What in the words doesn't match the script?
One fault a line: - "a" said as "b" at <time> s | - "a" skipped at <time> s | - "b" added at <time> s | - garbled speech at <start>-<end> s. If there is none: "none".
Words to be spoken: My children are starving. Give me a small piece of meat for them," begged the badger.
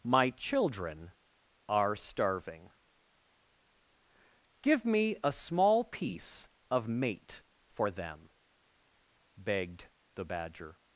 - "meat" said as "mate" at 6.9 s